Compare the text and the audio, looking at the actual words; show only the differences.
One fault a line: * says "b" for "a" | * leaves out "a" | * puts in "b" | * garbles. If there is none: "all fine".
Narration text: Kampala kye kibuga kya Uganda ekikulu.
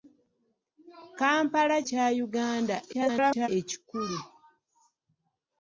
* leaves out "kye kibuga"
* garbles